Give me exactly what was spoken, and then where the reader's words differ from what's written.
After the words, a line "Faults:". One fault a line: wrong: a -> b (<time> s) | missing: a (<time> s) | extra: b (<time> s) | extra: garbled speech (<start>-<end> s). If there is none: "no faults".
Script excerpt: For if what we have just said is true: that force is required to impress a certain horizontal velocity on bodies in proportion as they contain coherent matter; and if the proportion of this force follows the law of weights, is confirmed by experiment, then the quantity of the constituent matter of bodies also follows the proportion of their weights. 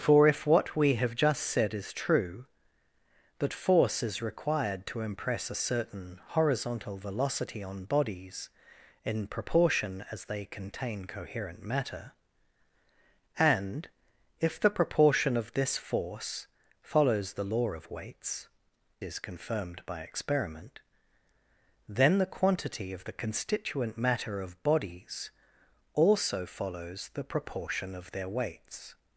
For if what we have just said is true: that force is required to impress a certain horizontal velocity on bodies in proportion as they contain coherent matter; and if the proportion of this force follows the law of weights, is confirmed by experiment, then the quantity of the constituent matter of bodies also follows the proportion of their weights.
Faults:
no faults